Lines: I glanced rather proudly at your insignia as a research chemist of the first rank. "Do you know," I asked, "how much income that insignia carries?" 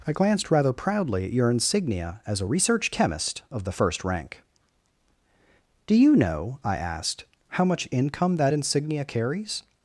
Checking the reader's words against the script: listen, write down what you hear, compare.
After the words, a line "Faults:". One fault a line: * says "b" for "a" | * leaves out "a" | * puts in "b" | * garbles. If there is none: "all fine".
I glanced rather proudly at your insignia as a research chemist of the first rank. "Do you know," I asked, "how much income that insignia carries?"
Faults:
all fine